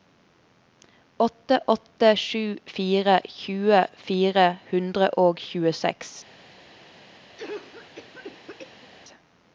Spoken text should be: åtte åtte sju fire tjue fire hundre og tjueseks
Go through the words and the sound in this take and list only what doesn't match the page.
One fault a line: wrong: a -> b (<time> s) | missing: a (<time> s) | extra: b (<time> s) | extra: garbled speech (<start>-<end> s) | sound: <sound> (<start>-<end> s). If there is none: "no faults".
sound: cough (7.4-8.9 s)